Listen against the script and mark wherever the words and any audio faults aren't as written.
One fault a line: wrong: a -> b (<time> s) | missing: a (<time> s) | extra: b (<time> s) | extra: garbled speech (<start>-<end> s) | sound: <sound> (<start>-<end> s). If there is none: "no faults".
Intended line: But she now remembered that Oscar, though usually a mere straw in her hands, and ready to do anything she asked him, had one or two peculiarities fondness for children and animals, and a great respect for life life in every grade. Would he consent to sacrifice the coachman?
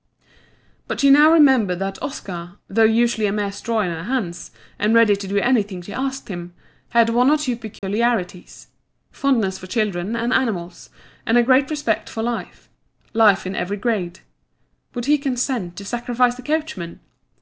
sound: dropout (7.8-7.8 s)